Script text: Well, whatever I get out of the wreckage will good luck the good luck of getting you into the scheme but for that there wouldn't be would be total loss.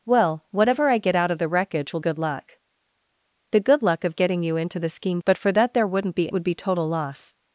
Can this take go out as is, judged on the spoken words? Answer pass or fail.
pass